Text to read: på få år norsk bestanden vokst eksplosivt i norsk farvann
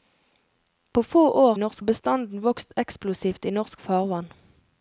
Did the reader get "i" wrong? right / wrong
right